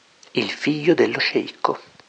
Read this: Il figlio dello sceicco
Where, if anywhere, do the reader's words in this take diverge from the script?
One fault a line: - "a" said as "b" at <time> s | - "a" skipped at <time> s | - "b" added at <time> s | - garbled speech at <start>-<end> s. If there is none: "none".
none